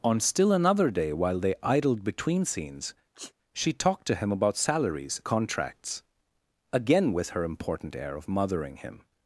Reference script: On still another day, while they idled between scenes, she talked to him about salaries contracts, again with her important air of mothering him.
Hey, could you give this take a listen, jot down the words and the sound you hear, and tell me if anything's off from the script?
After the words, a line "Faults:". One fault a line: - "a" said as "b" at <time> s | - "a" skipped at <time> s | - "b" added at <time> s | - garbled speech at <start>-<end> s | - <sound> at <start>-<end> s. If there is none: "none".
On still another day, while they idled between scenes, she talked to him about salaries contracts, again with her important air of mothering him.
Faults:
- sneeze at 3.1-3.3 s